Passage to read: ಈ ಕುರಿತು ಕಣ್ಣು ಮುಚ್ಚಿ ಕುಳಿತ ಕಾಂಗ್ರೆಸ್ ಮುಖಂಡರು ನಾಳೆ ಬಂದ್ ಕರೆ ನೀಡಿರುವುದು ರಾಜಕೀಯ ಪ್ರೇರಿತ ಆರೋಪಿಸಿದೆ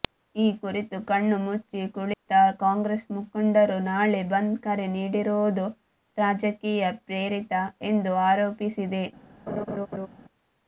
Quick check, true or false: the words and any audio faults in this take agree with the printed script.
false